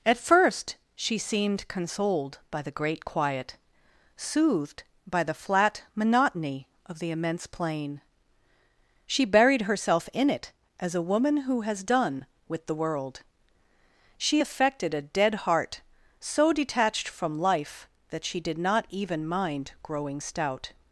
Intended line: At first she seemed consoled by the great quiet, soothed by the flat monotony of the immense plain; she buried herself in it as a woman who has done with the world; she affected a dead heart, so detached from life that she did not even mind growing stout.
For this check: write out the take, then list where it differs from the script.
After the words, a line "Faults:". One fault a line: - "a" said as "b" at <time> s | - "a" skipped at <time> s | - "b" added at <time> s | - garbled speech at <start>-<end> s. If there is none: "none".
At first she seemed consoled by the great quiet, soothed by the flat monotony of the immense plain; she buried herself in it as a woman who has done with the world; she affected a dead heart, so detached from life that she did not even mind growing stout.
Faults:
none